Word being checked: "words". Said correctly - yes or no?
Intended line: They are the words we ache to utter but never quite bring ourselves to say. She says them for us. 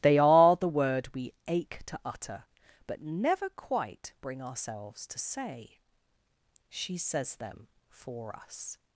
no